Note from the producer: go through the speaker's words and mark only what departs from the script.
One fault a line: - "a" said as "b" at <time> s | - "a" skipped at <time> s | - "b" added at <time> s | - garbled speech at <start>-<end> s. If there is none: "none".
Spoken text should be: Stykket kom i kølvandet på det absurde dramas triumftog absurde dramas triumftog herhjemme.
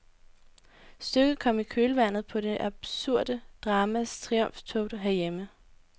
- "absurde dramas triumftog" skipped at 4.9 s